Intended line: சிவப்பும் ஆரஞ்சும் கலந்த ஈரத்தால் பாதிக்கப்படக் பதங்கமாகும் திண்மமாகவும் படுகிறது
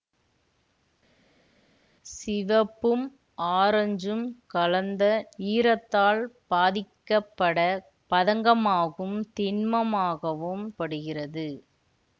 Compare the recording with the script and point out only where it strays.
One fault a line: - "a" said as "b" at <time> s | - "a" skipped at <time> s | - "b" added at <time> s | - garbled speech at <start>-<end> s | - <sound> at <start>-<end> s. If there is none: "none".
none